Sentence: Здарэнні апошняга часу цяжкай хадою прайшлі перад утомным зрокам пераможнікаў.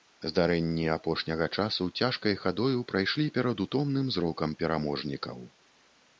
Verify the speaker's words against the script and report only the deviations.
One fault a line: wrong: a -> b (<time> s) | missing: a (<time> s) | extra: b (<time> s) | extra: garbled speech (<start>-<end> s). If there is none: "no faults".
no faults